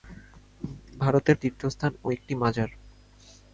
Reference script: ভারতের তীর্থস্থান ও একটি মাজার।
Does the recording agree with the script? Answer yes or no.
yes